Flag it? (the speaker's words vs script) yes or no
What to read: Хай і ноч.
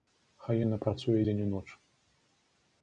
yes